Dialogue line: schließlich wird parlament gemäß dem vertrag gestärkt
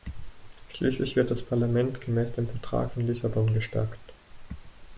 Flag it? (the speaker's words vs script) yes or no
yes